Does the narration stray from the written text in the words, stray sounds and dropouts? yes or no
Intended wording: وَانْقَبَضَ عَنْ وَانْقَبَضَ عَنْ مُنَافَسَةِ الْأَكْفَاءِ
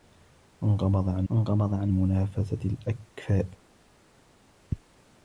no